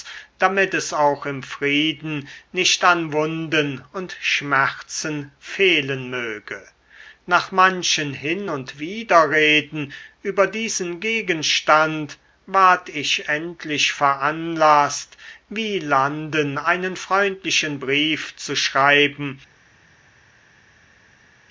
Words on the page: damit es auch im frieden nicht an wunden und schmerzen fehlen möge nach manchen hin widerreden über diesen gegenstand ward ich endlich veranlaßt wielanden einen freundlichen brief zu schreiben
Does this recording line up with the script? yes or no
no